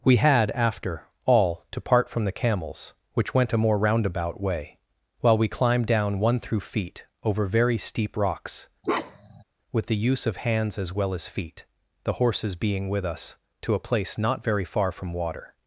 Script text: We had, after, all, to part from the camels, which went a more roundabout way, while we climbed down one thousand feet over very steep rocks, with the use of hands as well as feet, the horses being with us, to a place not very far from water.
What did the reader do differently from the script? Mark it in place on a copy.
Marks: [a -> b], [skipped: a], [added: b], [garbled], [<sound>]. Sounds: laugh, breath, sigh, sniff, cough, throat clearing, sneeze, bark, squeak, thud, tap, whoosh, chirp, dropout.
We had, after, all, to part from the camels, which went a more roundabout way, while we climbed down one [thousand -> through] feet over very steep rocks, [bark] with the use of hands as well as feet, the horses being with us, to a place not very far from water.